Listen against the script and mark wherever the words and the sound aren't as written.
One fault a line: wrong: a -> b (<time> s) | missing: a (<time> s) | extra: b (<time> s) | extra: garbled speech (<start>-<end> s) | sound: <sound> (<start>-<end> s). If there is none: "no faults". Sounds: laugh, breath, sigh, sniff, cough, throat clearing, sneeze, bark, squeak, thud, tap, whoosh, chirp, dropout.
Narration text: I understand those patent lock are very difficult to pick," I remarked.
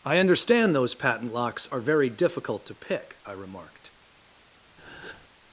wrong: lock -> locks (1.3 s)
sound: breath (4.8-5.3 s)